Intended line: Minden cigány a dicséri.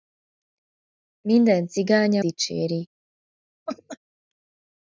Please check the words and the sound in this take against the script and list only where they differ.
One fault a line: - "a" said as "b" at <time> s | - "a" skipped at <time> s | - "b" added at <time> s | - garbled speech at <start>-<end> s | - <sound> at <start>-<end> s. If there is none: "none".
- laugh at 3.7-4.0 s